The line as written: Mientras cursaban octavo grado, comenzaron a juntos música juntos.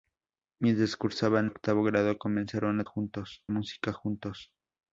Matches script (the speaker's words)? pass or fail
pass